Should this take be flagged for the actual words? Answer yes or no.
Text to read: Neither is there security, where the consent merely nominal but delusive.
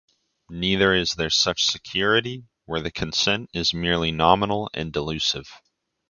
yes